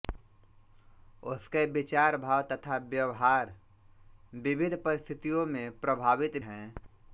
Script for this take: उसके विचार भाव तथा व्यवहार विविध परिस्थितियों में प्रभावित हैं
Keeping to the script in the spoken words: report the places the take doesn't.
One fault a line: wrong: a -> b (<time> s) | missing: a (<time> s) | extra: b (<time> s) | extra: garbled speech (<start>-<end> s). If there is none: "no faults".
no faults